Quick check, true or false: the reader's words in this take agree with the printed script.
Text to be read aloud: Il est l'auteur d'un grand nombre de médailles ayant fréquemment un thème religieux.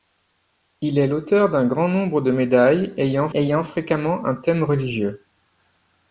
false